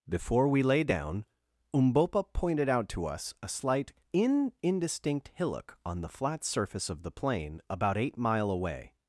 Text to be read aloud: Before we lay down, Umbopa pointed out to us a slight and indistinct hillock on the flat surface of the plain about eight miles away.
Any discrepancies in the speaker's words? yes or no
yes